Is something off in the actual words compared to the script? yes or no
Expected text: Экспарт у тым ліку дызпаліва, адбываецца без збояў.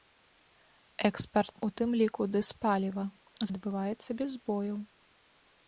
no